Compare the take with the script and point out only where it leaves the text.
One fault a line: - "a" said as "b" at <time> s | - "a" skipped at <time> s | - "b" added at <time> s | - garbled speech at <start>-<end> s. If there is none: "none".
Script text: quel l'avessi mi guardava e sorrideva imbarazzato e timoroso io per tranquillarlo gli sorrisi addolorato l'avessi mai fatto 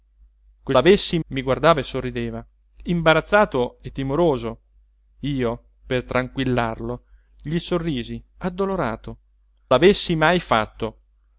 none